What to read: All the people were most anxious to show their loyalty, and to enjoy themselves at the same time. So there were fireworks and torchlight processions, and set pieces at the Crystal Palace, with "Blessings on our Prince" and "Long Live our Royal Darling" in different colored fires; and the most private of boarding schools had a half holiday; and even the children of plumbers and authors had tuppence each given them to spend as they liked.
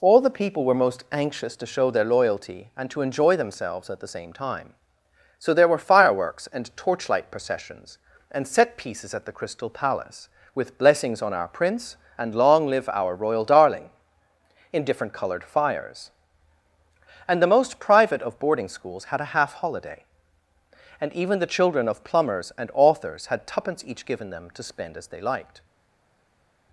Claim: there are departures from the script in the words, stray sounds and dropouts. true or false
false